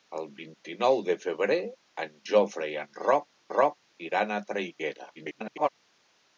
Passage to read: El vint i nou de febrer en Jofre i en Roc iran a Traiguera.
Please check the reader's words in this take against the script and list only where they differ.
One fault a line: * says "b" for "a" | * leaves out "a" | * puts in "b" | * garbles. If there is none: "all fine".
* puts in "Roc"
* garbles